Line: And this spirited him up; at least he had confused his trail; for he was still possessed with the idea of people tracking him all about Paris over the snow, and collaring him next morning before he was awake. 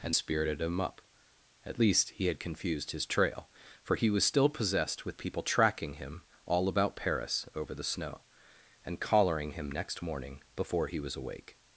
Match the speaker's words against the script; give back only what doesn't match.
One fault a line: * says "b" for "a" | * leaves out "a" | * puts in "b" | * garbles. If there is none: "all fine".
* leaves out "this"
* leaves out "the idea of"